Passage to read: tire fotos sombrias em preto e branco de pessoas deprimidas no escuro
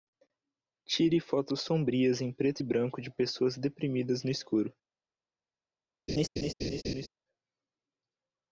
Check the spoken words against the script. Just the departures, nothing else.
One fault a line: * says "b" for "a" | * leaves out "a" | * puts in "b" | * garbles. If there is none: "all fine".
all fine